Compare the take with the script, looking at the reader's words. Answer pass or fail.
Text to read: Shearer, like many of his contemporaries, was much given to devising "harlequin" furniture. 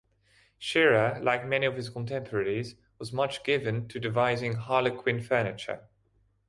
pass